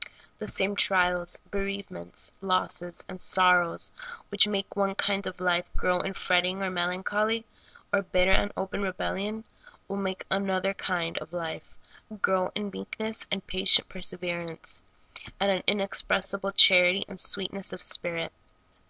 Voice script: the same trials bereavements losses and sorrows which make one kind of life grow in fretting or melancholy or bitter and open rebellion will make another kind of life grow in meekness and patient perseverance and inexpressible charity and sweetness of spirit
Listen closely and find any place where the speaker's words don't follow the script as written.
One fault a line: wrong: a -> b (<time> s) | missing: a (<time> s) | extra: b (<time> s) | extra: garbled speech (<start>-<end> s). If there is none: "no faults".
extra: an (15.5 s)